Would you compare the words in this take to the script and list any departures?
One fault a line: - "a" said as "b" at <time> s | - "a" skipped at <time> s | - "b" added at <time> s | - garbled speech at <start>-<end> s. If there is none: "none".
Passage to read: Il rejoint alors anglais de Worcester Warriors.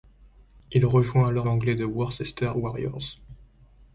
none